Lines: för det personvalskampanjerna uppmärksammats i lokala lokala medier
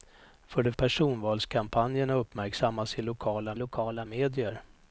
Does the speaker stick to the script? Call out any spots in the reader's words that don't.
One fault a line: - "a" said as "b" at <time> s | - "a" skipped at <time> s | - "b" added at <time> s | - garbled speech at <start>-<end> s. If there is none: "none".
none